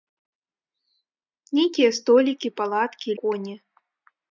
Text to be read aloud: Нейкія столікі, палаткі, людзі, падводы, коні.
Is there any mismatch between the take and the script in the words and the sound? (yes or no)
yes